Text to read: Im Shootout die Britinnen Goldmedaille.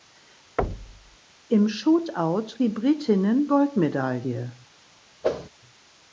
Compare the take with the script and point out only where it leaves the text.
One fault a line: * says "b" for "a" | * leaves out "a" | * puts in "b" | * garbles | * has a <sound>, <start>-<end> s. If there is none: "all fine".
* has a thud, 0.6-1.2 s
* has a whoosh, 5.2-5.5 s